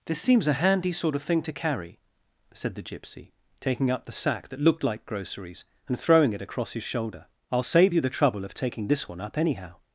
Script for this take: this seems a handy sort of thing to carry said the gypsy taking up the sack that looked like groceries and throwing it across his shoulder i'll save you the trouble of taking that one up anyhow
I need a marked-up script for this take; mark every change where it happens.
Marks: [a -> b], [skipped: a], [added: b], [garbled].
this seems a handy sort of thing to carry said the gypsy taking up the sack that looked like groceries and throwing it across his shoulder i'll save you the trouble of taking [that -> this] one up anyhow